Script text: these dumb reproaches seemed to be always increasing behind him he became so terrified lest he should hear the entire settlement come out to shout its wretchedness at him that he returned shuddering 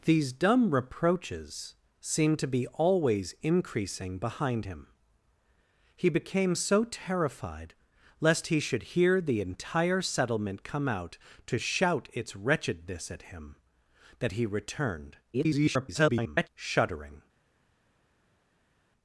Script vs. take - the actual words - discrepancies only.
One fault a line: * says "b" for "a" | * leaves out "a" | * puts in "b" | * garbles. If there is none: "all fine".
* garbles